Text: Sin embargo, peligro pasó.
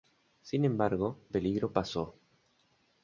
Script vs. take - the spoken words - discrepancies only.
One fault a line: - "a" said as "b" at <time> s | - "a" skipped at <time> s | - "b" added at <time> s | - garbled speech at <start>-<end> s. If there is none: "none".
none